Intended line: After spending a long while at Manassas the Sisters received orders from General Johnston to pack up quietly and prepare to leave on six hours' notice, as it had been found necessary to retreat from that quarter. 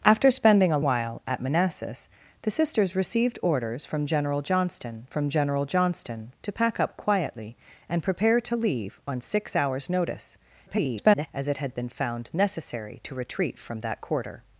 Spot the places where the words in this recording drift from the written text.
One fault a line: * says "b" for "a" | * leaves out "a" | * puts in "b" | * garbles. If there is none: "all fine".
* leaves out "long"
* puts in "from General Johnston"
* garbles